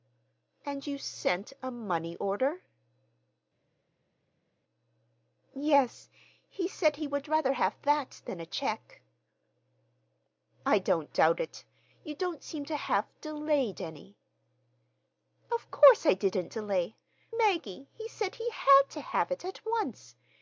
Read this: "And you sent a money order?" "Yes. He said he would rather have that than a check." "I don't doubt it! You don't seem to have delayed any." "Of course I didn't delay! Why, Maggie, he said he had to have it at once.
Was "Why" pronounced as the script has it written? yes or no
no